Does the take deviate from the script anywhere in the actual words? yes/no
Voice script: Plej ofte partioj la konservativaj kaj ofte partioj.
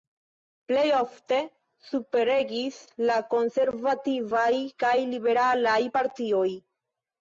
yes